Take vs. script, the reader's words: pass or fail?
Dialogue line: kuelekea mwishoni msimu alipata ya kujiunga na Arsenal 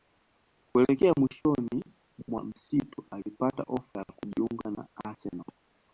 fail